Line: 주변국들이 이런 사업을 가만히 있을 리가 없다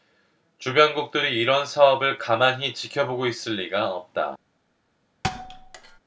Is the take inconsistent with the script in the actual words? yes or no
yes